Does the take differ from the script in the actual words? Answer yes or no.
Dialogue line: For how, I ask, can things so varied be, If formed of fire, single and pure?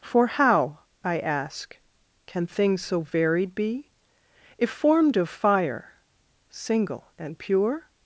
no